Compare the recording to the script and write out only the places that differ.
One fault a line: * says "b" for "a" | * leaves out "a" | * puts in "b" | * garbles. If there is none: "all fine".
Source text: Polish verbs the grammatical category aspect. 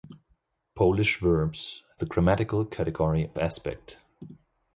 all fine